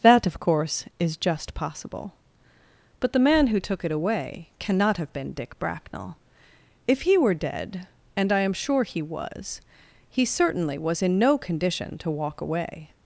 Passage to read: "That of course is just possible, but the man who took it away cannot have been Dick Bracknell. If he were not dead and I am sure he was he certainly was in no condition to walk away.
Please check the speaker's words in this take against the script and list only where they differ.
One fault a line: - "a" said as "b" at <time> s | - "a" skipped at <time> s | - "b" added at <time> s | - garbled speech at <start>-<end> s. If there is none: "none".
- "not" skipped at 7.3 s